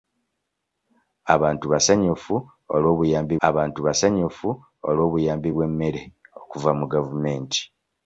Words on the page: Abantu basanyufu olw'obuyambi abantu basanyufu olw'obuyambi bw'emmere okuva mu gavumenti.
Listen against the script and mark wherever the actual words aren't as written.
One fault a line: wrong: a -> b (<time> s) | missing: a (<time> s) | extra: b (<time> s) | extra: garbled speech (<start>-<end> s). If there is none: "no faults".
no faults